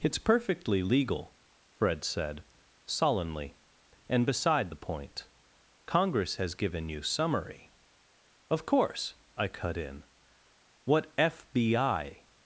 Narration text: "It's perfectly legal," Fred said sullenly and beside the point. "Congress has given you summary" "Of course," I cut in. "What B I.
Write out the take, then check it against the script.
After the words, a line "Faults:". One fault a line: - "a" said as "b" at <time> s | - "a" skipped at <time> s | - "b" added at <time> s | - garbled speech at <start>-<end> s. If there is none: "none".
"It's perfectly legal," Fred said sullenly and beside the point. "Congress has given you summary" "Of course," I cut in. "What F B I.
Faults:
- "F" added at 11.2 s